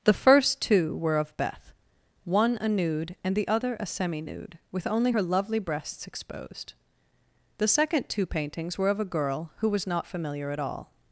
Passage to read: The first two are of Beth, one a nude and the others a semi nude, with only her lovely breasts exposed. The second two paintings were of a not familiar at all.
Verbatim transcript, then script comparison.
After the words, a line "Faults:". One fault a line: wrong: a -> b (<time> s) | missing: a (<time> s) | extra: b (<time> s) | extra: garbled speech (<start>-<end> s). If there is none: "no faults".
The first two were of Beth, one a nude and the other a semi nude, with only her lovely breasts exposed. The second two paintings were of a girl who was not familiar at all.
Faults:
wrong: are -> were (1.0 s)
wrong: others -> other (3.5 s)
extra: girl who was (9.0 s)